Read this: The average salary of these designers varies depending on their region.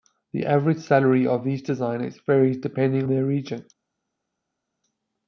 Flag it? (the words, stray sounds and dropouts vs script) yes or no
yes